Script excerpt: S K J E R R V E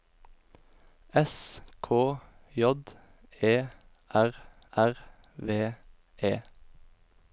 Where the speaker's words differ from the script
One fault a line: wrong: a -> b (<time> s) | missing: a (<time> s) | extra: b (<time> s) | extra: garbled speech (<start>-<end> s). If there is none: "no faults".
no faults